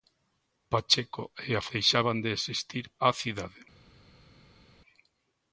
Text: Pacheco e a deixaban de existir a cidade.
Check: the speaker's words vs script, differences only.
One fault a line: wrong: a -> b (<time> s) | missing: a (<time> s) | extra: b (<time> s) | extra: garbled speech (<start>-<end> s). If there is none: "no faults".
no faults